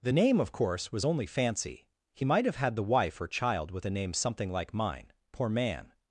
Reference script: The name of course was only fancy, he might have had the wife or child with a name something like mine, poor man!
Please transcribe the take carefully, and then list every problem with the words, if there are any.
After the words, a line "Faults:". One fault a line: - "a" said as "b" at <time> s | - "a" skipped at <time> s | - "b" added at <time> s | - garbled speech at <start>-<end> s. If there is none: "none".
The name of course was only fancy, he might have had the wife or child with a name something like mine, poor man!
Faults:
none